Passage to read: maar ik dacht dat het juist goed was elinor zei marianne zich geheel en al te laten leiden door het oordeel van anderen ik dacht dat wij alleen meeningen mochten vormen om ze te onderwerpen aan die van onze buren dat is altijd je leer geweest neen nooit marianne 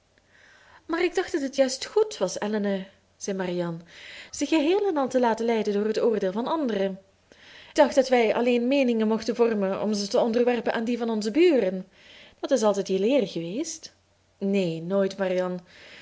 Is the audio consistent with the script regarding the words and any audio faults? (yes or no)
no